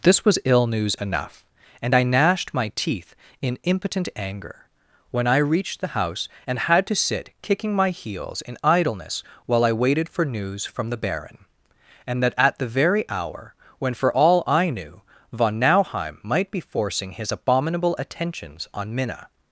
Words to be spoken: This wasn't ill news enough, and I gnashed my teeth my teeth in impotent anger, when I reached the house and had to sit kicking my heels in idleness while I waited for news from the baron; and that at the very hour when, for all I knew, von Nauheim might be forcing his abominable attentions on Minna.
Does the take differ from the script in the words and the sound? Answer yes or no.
yes